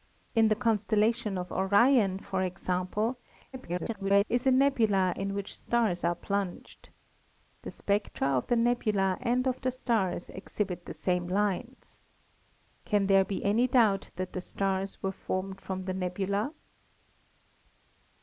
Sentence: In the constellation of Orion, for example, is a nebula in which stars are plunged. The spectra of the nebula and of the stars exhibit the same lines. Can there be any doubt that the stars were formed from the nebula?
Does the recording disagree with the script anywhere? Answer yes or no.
yes